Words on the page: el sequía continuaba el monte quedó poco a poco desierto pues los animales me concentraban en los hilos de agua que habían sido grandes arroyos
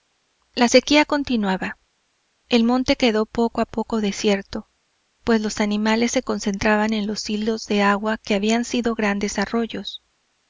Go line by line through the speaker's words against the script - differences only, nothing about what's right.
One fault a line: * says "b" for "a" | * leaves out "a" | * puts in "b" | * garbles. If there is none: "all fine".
* says "la" for "el"
* says "se" for "me"